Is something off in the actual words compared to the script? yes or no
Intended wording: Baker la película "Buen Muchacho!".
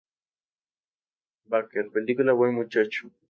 yes